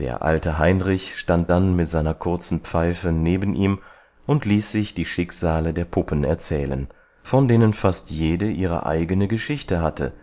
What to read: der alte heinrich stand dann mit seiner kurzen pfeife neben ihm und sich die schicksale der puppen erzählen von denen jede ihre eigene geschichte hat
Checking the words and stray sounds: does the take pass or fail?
fail